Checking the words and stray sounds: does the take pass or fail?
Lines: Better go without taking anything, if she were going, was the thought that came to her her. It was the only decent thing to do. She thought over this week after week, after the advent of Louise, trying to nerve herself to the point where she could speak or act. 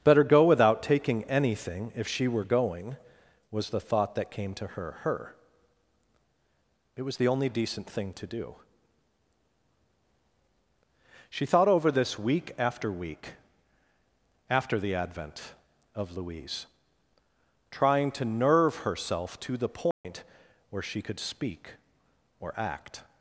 fail